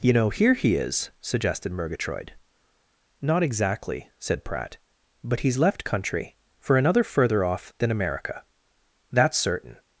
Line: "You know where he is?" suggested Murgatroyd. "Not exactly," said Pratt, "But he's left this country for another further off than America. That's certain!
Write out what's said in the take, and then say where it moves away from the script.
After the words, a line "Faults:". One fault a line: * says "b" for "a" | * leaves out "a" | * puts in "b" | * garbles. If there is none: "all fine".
"You know here he is?" suggested Murgatroyd. "Not exactly," said Pratt, "But he's left country for another further off than America. That's certain!
Faults:
* says "here" for "where"
* leaves out "this"